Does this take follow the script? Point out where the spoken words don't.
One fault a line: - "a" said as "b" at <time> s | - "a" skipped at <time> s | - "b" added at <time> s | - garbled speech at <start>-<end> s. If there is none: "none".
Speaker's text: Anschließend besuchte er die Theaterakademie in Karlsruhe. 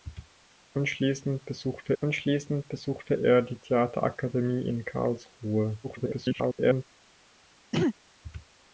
- "anschließend besuchte" added at 2.0 s
- garbled speech at 5.8-6.9 s